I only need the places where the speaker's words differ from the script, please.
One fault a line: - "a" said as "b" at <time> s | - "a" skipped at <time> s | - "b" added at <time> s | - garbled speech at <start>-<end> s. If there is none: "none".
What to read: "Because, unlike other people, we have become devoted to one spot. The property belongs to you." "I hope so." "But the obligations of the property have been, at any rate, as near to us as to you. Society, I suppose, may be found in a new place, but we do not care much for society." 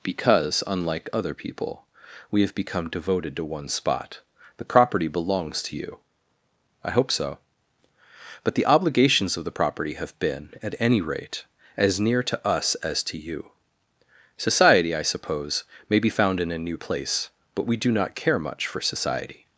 none